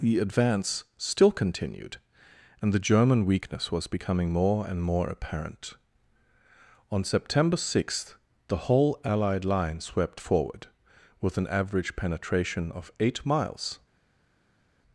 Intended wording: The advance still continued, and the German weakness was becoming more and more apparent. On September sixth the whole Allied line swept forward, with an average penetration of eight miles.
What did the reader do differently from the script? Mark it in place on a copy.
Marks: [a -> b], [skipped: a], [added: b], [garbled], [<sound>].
The advance still continued, and the German weakness was becoming more and more apparent. On September sixth the whole Allied line swept forward, with an average penetration of eight miles.